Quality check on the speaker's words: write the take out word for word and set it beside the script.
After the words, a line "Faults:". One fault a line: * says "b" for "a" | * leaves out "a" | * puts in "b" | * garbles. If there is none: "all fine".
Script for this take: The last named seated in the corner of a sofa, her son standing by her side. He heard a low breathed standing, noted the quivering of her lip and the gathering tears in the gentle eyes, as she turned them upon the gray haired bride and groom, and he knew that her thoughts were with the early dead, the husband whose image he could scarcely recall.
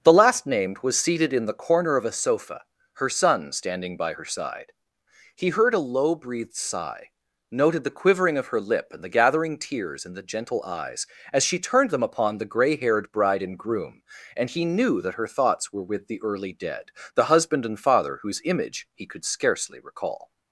The last named was seated in the corner of a sofa, her son standing by her side. He heard a low breathed sigh, noted the quivering of her lip and the gathering tears in the gentle eyes, as she turned them upon the gray haired bride and groom, and he knew that her thoughts were with the early dead, the husband and father whose image he could scarcely recall.
Faults:
* puts in "was"
* says "sigh" for "standing"
* puts in "and father"